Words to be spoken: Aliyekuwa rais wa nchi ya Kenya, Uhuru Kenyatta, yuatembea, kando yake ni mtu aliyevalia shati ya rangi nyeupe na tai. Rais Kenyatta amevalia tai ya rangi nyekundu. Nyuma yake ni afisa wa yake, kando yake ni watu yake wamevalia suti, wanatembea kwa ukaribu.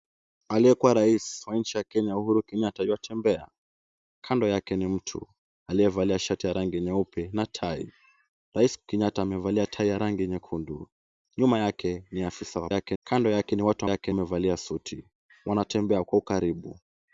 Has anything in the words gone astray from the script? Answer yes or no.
no